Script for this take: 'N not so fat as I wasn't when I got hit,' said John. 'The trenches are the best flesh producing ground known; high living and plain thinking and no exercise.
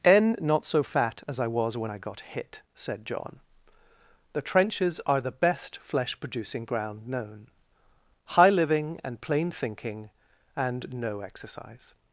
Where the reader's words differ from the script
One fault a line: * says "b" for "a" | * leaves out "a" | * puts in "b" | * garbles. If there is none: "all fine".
* says "was" for "wasn't"